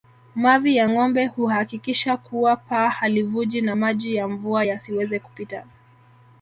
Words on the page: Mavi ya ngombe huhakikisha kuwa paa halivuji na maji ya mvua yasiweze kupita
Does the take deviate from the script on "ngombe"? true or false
false